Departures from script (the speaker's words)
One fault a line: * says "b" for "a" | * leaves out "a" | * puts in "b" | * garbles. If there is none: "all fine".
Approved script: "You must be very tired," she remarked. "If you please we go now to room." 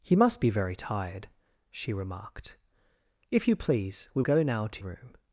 all fine